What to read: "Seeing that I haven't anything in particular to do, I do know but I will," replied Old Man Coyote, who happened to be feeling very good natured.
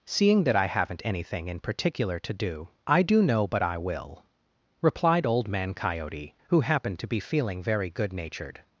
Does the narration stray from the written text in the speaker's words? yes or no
no